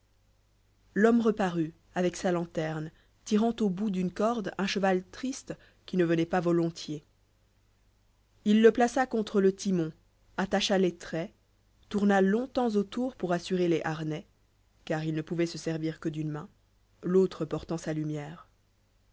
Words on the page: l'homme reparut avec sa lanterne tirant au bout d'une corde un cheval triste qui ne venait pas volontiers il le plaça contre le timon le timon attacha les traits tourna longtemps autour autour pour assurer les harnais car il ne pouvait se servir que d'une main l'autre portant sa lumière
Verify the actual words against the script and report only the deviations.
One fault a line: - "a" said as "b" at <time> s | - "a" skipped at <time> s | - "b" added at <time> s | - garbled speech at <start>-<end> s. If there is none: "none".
- "le timon" skipped at 9.9 s
- "autour" skipped at 13.2 s